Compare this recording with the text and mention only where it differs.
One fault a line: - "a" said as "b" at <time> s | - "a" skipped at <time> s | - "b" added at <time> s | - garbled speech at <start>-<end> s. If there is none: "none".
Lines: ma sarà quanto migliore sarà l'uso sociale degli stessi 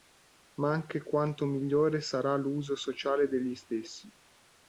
- "sarà" said as "anche" at 0.7 s